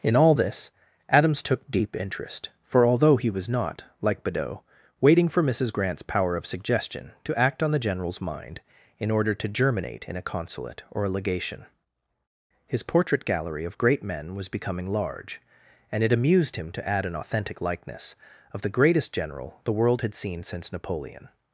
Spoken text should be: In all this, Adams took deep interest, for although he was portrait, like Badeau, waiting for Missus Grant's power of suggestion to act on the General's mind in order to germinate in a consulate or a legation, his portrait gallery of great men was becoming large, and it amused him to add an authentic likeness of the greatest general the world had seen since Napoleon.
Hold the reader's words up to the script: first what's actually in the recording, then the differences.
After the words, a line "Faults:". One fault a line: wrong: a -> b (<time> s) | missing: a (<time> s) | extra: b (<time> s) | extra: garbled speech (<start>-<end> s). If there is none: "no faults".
In all this, Adams took deep interest, for although he was not, like Badeau, waiting for Missus Grant's power of suggestion to act on the General's mind in order to germinate in a consulate or a legation, his portrait gallery of great men was becoming large, and it amused him to add an authentic likeness of the greatest general the world had seen since Napoleon.
Faults:
wrong: portrait -> not (3.5 s)